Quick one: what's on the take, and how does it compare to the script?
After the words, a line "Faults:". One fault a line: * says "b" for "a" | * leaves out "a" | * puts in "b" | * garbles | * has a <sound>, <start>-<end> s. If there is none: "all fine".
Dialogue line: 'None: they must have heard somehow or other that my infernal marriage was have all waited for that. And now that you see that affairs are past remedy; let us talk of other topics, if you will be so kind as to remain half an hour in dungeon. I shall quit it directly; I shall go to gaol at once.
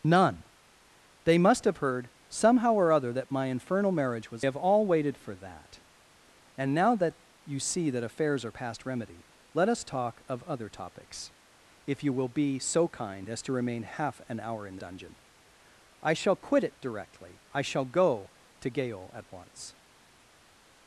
'None: they must have heard somehow or other that my infernal marriage was have all waited for that. And now that you see that affairs are past remedy; let us talk of other topics, if you will be so kind as to remain half an hour in dungeon. I shall quit it directly; I shall go to gaol at once.
Faults:
all fine